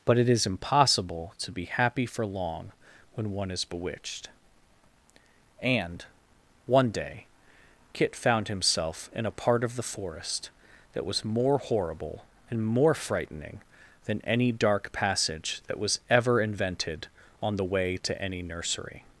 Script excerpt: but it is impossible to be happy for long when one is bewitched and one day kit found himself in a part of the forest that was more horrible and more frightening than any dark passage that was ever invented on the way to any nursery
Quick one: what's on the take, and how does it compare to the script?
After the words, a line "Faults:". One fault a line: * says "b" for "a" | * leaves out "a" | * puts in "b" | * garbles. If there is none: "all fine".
but it is impossible to be happy for long when one is bewitched and one day kit found himself in a part of the forest that was more horrible and more frightening than any dark passage that was ever invented on the way to any nursery
Faults:
all fine